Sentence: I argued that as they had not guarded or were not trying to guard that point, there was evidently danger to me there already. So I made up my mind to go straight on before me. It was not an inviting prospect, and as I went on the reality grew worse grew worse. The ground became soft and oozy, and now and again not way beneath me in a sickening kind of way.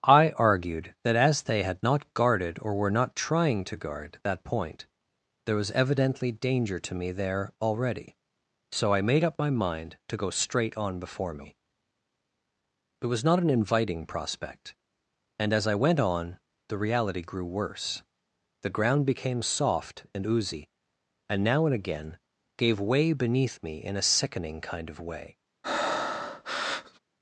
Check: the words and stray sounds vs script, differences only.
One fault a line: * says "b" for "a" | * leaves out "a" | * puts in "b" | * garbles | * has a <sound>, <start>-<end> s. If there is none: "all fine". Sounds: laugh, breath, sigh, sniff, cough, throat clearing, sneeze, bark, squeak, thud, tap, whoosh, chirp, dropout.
* leaves out "grew worse"
* says "gave" for "not"
* has a breath, 25.6-27.0 s